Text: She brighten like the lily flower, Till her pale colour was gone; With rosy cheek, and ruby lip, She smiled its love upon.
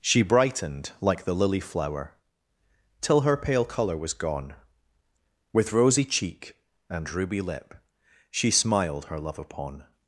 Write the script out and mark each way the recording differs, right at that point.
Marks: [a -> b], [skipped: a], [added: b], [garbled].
She [brighten -> brightened] like the lily flower, Till her pale colour was gone; With rosy cheek, and ruby lip, She smiled [its -> her] love upon.